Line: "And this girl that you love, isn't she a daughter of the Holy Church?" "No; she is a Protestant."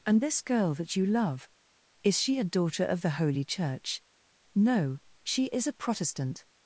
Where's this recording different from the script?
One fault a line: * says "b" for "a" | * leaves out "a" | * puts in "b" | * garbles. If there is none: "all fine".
* says "is" for "isn't"